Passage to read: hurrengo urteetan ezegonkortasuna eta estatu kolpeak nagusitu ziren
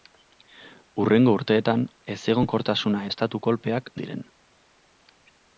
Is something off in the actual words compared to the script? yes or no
yes